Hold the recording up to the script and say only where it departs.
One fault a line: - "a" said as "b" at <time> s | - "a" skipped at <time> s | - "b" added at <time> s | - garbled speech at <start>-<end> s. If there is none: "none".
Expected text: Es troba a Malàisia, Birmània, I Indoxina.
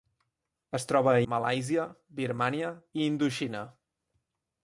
none